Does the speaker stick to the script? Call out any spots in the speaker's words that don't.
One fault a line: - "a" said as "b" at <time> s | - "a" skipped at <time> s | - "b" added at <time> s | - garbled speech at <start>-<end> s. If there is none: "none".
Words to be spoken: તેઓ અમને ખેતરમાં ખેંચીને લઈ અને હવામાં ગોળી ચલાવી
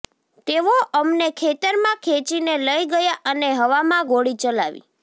- "ગયા" added at 2.9 s